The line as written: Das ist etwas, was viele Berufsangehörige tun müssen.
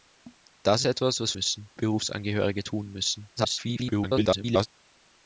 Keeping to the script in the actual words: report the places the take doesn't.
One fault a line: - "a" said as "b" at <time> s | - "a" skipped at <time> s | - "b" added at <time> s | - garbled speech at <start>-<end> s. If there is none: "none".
- "ist" skipped at 0.8 s
- "viele" said as "müssen" at 1.3 s
- garbled speech at 3.4-4.7 s